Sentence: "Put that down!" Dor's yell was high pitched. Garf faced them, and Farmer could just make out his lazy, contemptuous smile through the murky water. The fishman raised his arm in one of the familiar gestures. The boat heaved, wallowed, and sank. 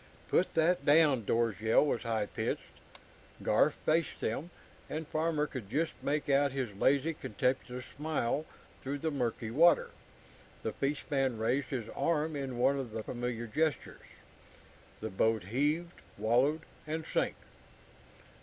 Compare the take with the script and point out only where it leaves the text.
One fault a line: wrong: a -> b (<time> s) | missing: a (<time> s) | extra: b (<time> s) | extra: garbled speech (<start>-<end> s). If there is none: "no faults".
no faults